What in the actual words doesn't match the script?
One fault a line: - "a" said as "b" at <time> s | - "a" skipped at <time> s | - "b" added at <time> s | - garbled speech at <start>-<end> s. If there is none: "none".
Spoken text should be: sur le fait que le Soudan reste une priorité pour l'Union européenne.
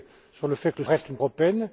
- "Soudan" skipped at 0.8 s
- "priorité pour l'Union" skipped at 1.2 s